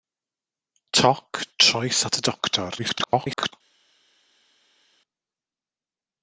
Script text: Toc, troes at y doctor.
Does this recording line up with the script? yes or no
no